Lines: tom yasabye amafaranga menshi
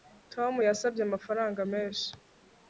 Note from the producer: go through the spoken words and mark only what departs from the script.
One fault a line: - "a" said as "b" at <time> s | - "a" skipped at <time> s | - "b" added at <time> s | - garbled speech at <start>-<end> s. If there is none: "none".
none